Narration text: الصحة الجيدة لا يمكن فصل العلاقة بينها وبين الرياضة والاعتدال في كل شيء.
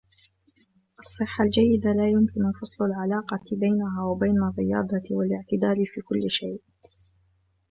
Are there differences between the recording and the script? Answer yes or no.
no